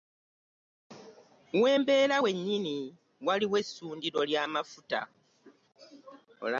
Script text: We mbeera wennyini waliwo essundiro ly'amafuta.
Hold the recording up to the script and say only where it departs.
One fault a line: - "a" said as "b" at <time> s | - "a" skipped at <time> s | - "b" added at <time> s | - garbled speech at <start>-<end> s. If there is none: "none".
none